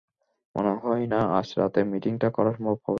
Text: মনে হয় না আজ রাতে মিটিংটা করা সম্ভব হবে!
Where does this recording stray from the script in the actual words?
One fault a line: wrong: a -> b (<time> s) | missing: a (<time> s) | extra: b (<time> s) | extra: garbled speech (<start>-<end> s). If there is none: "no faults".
no faults